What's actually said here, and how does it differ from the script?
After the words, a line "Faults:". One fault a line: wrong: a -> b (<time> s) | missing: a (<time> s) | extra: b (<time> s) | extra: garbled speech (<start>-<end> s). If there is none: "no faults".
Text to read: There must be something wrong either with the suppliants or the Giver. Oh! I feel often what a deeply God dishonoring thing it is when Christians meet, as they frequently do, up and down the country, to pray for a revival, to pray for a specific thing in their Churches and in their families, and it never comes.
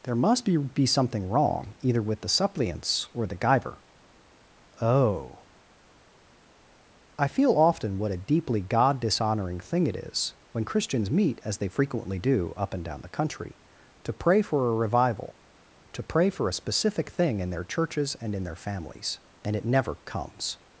There must be be something wrong either with the suppliants or the Giver. Oh! I feel often what a deeply God dishonoring thing it is when Christians meet, as they frequently do, up and down the country, to pray for a revival, to pray for a specific thing in their Churches and in their families, and it never comes.
Faults:
extra: be (0.6 s)